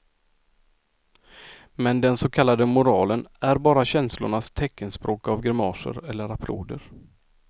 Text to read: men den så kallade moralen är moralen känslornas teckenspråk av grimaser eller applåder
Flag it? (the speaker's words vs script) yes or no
yes